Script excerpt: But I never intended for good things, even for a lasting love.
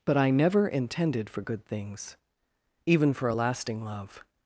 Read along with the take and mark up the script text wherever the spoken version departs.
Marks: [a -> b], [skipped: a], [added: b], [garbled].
But I never intended for good things, even for a lasting love.